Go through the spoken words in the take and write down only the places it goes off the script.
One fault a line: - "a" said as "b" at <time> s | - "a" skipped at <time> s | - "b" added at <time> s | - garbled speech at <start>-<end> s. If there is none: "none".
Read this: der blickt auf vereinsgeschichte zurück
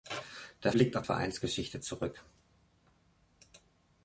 none